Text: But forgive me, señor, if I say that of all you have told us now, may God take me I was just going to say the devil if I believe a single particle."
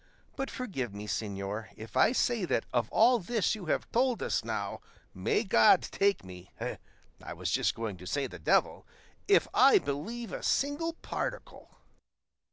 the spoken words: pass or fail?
fail